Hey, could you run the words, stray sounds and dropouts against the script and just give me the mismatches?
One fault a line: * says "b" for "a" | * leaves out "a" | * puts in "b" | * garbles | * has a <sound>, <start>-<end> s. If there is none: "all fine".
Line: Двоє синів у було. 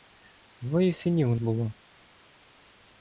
all fine